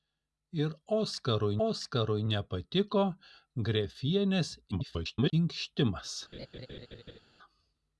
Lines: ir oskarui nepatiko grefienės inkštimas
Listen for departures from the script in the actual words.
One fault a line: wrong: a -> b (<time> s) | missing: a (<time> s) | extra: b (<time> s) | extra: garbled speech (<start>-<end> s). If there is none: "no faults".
extra: oskarui (1.7 s)
extra: garbled speech (4.7-5.3 s)